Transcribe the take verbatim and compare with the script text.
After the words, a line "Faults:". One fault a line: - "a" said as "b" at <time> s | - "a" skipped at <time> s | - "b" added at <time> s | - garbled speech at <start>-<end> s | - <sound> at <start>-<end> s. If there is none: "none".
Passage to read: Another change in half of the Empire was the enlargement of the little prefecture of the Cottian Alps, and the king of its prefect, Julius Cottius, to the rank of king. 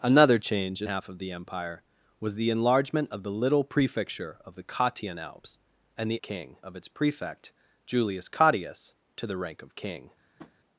Another change in half of the Empire was the enlargement of the little prefecture of the Cottian Alps, and the king of its prefect, Julius Cottius, to the rank of king.
Faults:
- tap at 10.4-10.5 s